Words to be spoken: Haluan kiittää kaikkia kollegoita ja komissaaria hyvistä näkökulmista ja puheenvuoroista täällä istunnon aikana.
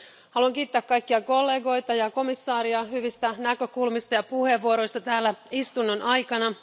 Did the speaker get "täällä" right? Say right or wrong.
right